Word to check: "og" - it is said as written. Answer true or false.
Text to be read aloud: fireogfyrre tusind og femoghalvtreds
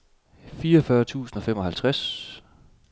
true